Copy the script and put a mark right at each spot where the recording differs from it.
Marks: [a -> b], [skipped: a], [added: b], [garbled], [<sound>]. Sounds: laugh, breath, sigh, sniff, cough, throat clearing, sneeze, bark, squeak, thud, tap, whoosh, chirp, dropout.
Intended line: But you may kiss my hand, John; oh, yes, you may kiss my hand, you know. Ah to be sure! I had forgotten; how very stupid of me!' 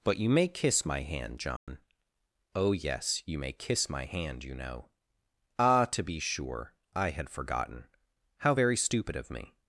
But you may kiss my hand, John; [dropout] oh, yes, you may kiss my hand, you know. Ah to be sure! I had forgotten; how very stupid of me!'